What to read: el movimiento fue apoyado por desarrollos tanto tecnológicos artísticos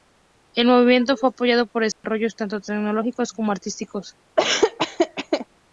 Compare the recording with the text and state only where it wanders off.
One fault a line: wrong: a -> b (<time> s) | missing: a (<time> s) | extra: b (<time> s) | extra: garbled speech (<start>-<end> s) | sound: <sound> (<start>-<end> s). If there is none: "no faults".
sound: dropout (1.9-2.0 s)
extra: como (3.3 s)
sound: laugh (4.4-5.5 s)